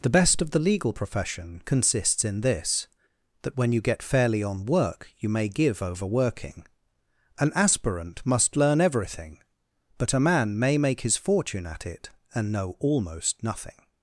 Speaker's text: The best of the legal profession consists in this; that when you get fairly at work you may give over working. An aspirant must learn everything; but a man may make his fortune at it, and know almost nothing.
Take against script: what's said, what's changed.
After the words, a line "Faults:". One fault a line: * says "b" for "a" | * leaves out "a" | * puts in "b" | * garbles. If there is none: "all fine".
The best of the legal profession consists in this; that when you get fairly on work you may give over working. An aspirant must learn everything; but a man may make his fortune at it, and know almost nothing.
Faults:
* says "on" for "at"